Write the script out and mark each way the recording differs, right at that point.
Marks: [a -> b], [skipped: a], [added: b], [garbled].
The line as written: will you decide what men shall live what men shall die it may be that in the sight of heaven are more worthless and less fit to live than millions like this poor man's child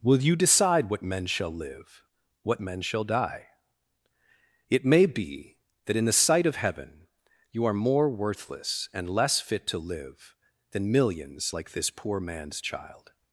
will you decide what men shall live what men shall die it may be that in the sight of heaven [added: you] are more worthless and less fit to live than millions like this poor man's child